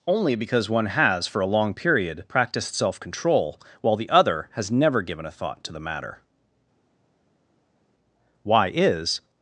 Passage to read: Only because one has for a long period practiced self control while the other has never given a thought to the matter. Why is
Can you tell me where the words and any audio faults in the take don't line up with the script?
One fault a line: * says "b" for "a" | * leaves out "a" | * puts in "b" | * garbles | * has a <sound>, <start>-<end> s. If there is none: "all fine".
all fine